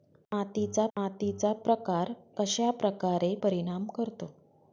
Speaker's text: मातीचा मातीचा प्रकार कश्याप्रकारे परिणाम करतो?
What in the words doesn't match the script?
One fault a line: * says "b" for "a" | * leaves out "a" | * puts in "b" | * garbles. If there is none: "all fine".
all fine